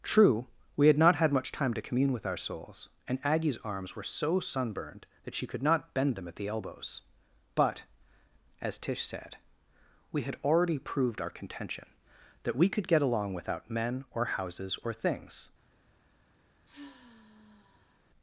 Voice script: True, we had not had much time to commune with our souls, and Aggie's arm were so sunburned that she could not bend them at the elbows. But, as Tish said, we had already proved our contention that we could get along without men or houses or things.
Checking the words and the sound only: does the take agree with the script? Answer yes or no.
no